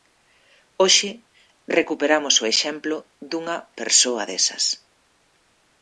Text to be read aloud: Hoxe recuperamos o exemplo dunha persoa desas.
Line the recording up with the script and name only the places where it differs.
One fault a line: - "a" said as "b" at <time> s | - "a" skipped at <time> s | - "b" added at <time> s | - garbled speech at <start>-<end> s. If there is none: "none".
none